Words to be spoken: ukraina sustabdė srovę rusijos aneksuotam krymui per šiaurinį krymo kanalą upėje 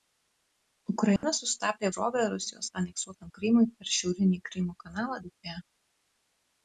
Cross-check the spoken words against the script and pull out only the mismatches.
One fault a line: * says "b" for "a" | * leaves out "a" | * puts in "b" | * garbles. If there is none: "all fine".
all fine